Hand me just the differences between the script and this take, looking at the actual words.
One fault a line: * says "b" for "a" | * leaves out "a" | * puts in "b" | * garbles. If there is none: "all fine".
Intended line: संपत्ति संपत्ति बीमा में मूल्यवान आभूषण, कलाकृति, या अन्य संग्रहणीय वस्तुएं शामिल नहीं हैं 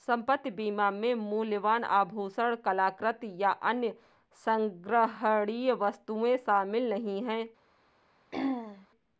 * leaves out "संपत्ति"